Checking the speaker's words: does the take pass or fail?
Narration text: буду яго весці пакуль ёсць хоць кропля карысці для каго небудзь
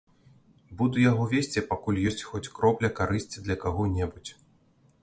pass